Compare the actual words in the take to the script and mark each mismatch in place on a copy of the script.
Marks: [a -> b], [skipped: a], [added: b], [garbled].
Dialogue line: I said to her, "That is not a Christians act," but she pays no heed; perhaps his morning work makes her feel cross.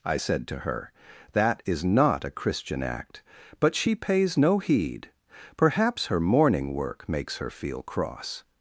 I said to her, "That is not a [Christians -> Christian] act," but she pays no heed; perhaps [his -> her] morning work makes her feel cross.